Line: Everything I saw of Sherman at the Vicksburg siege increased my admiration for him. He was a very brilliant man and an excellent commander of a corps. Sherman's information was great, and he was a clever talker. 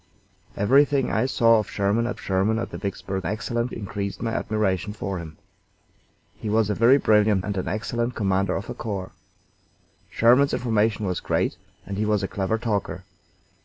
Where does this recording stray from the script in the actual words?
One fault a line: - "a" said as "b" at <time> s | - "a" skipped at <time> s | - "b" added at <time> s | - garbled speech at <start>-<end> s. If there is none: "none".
- "Sherman at" added at 2.2 s
- "siege" said as "excellent" at 3.3 s
- "man" skipped at 7.4 s